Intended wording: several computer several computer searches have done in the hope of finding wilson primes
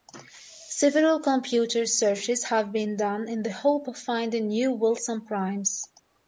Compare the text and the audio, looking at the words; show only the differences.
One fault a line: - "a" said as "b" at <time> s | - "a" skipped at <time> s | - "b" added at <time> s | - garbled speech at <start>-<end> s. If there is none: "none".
- "several computer" skipped at 1.9 s
- "been" added at 2.7 s
- "new" added at 4.5 s